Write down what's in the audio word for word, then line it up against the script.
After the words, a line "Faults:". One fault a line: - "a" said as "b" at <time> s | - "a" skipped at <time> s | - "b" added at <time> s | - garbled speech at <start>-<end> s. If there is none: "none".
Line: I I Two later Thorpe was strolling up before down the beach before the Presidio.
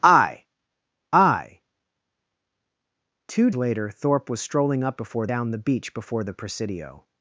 I I Two later Thorpe was strolling up before down the beach before the Presidio.
Faults:
none